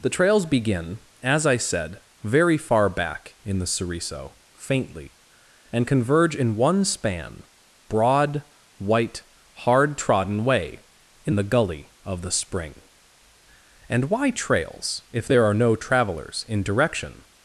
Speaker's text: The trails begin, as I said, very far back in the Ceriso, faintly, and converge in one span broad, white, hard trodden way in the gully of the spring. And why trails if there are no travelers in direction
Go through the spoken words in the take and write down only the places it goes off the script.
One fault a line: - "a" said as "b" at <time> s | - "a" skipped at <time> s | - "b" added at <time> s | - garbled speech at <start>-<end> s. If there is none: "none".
none